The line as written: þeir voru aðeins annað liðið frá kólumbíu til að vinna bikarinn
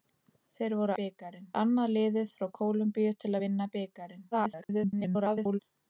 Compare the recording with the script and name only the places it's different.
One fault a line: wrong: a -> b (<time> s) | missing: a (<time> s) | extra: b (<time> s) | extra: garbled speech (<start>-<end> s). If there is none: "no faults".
wrong: aðeins -> bikarinn (1.0 s)
extra: garbled speech (4.3-5.6 s)